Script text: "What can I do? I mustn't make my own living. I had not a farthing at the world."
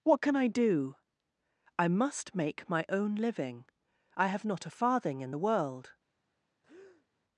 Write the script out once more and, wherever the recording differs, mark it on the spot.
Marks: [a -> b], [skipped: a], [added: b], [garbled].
"What can I do? I [mustn't -> must] make my own living. I [had -> have] not a farthing [at -> in] the world."